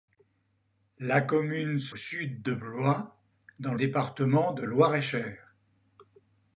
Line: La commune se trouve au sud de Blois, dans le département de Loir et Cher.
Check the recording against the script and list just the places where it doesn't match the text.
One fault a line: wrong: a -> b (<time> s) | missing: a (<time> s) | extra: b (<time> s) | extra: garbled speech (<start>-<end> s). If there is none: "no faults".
missing: trouve (1.9 s)
missing: le (3.8 s)